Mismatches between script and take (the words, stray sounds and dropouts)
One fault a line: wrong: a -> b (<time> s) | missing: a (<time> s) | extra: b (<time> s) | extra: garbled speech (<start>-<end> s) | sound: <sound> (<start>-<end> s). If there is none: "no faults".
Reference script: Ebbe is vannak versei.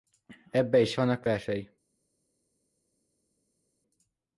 no faults